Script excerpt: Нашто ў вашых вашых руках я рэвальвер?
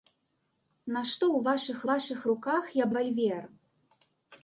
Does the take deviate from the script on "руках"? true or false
false